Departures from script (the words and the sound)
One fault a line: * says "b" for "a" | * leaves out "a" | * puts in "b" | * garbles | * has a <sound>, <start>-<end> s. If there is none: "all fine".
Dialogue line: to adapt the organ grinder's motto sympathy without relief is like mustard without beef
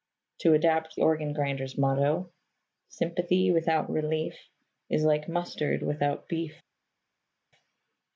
* leaves out "the"